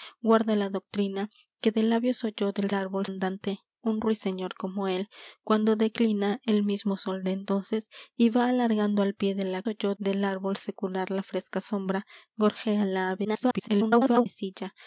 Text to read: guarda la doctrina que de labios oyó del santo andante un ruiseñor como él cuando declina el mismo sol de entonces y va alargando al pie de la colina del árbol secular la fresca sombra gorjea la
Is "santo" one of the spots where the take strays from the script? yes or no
yes